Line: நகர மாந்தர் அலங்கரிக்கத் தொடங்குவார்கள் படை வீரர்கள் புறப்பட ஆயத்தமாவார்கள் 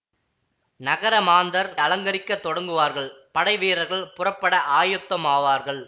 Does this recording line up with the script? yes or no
yes